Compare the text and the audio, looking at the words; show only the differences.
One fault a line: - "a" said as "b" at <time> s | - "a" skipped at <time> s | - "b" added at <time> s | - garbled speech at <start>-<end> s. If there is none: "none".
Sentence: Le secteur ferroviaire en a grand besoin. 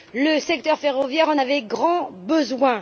- "a" said as "avait" at 1.4 s